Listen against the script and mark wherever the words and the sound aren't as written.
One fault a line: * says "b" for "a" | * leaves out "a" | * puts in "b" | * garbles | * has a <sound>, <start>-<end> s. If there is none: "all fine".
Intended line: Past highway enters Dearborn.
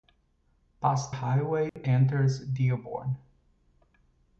* has a dropout, 1.7-1.8 s